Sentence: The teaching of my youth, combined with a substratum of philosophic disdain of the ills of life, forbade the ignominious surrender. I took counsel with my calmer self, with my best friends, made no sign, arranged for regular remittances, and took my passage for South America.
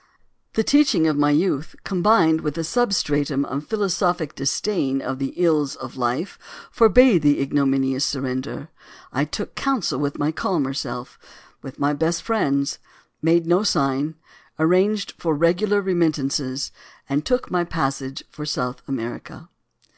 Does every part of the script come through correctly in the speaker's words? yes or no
yes